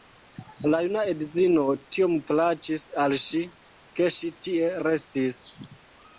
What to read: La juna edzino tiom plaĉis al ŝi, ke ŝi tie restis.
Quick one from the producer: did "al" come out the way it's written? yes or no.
yes